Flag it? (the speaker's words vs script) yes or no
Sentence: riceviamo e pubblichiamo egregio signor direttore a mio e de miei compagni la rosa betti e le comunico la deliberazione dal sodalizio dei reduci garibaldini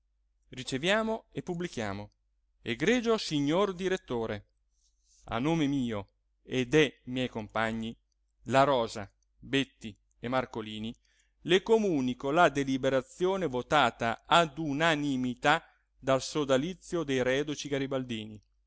yes